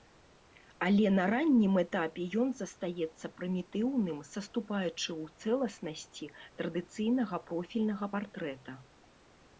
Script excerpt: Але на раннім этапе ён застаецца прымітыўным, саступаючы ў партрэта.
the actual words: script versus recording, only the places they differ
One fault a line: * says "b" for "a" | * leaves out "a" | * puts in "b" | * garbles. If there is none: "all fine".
* puts in "цэласнасці традыцыйнага профільнага"